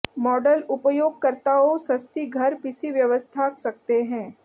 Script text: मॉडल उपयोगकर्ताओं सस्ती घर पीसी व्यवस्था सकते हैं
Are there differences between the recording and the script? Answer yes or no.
no